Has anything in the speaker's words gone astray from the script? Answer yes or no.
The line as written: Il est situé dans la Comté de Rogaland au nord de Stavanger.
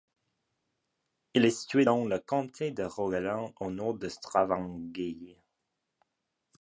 yes